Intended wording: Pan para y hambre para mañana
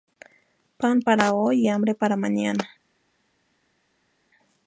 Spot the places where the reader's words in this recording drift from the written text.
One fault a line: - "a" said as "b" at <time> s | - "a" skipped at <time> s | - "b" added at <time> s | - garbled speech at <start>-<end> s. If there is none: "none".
- "hoy" added at 1.3 s